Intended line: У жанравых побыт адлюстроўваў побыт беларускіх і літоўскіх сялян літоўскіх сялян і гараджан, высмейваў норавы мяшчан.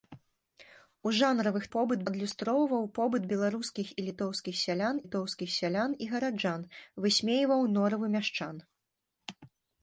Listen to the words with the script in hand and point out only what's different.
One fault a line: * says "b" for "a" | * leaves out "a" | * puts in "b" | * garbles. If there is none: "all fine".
all fine